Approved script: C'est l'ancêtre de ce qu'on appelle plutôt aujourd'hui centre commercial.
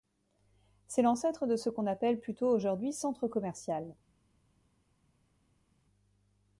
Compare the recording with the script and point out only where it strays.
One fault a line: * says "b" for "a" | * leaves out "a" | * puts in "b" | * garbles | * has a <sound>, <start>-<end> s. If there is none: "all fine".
all fine